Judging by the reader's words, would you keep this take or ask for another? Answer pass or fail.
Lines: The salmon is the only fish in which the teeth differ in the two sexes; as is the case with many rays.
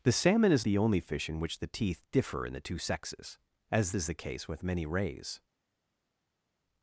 pass